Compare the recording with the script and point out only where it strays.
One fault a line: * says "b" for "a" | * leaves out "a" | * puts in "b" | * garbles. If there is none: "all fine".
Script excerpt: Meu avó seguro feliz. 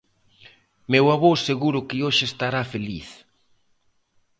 * puts in "que hoxe estará"